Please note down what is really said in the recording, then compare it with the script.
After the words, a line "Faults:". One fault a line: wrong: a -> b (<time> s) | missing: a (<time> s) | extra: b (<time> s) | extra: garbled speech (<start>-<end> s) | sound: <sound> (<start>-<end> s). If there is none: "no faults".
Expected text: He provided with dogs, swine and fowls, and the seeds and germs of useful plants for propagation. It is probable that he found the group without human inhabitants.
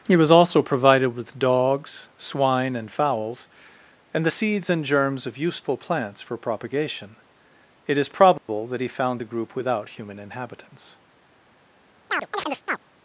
He was also provided with dogs, swine and fowls, and the seeds and germs of useful plants for propagation. It is probable that he found the group without human inhabitants.
Faults:
extra: was also (0.1 s)
sound: dropout (8.4-8.5 s)
sound: chirp (12.1-12.8 s)